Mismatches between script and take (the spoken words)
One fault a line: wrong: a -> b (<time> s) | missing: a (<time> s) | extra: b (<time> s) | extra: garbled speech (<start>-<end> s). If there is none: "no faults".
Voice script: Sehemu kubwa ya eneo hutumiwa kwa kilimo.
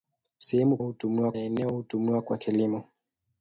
wrong: kubwa -> hutumiwa (0.8 s)